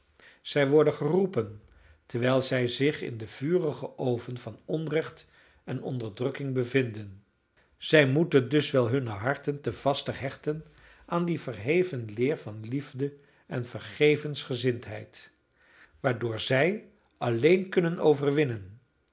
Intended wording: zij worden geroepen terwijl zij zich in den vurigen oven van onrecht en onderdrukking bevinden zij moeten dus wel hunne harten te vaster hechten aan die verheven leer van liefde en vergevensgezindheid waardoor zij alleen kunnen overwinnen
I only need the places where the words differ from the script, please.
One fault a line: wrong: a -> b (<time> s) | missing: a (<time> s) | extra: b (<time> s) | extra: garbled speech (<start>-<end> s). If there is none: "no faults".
no faults